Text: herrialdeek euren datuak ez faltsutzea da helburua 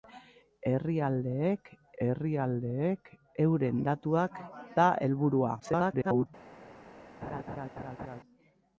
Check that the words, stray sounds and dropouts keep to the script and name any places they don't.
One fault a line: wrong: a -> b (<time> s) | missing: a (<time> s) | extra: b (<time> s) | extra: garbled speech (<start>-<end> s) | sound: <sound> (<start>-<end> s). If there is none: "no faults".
extra: herrialdeek (2.0 s)
missing: ez faltsutzea (4.4 s)
extra: garbled speech (5.6-6.3 s)
sound: laugh (7.2-8.2 s)